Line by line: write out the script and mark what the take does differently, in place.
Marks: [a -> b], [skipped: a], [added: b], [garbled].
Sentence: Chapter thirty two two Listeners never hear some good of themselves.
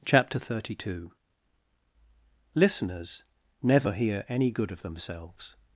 Chapter thirty two [skipped: two] Listeners never hear [some -> any] good of themselves.